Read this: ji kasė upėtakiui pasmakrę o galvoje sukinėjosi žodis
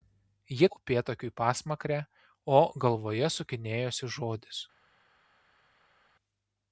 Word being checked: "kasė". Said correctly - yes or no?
no